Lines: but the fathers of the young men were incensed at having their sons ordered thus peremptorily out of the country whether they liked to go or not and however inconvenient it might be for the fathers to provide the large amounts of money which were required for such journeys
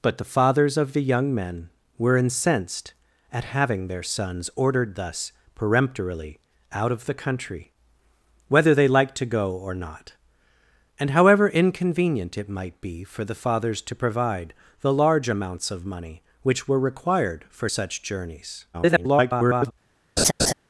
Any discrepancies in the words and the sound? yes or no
yes